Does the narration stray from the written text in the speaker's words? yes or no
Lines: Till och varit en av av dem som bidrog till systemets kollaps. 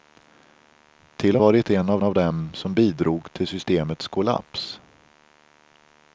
no